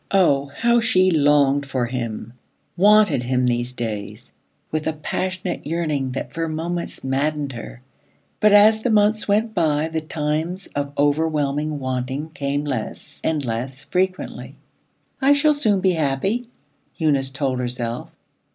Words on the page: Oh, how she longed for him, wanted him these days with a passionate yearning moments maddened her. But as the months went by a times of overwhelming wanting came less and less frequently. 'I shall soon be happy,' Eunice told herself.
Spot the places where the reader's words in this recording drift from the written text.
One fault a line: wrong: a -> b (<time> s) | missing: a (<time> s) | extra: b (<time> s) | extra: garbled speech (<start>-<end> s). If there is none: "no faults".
extra: that for (6.1 s)
wrong: a -> the (9.9 s)